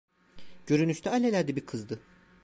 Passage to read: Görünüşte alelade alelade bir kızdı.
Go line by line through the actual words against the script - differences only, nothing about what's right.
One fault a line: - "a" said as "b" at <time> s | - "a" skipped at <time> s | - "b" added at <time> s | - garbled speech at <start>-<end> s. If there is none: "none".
- "alelade" skipped at 1.6 s